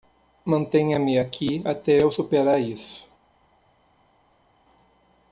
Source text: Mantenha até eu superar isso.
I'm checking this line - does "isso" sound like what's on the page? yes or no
yes